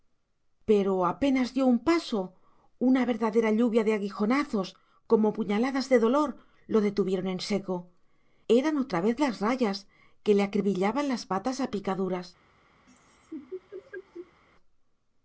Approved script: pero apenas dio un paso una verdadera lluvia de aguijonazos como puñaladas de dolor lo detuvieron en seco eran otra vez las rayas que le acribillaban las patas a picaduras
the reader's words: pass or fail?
pass